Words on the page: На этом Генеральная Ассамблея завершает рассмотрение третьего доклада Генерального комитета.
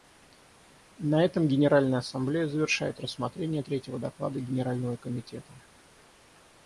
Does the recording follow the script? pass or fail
pass